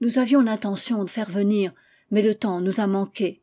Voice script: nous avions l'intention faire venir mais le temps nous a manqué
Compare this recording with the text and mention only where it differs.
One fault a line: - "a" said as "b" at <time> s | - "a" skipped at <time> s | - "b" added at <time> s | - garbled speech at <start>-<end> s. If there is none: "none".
none